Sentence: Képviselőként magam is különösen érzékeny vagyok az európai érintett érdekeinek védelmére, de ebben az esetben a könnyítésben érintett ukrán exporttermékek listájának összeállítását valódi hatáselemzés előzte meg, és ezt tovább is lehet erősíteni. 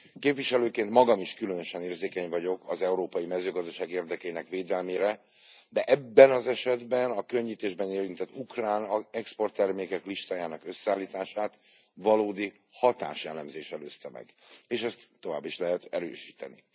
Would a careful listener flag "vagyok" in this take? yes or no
no